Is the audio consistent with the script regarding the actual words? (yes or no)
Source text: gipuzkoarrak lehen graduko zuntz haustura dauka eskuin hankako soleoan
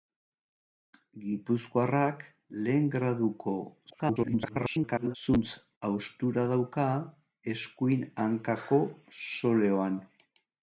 no